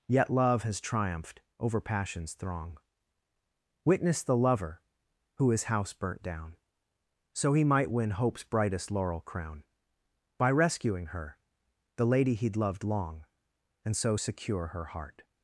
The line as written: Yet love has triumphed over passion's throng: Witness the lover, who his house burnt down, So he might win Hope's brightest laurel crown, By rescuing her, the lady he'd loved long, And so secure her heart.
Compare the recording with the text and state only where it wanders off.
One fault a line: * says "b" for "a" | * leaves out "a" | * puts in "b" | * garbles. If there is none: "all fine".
all fine